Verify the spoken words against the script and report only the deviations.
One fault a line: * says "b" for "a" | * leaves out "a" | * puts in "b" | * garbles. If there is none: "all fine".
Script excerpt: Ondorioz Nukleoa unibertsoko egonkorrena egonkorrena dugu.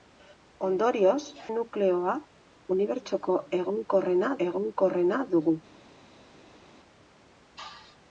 all fine